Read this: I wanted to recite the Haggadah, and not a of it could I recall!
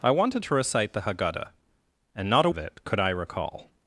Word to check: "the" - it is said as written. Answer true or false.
true